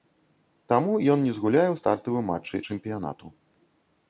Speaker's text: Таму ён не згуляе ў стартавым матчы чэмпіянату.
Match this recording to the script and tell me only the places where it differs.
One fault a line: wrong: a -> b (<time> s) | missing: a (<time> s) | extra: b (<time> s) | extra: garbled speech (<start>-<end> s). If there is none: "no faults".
no faults